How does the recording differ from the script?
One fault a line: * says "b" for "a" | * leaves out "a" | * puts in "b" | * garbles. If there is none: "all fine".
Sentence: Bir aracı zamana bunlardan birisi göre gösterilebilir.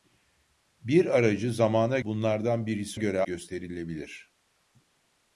all fine